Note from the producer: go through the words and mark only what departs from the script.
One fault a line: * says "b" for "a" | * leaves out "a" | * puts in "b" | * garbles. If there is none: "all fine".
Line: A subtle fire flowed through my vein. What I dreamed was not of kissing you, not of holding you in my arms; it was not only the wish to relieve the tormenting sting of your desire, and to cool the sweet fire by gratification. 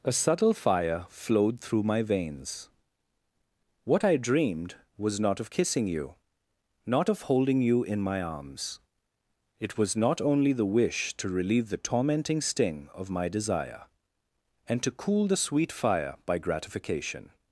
* says "veins" for "vein"
* says "my" for "your"